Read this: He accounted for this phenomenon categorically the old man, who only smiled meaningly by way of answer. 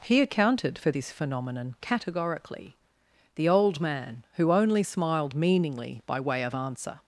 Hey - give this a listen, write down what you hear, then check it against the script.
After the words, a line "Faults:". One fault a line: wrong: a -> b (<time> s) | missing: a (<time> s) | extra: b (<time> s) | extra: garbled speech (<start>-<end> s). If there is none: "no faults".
He accounted for this phenomenon categorically the old man, who only smiled meaningly by way of answer.
Faults:
no faults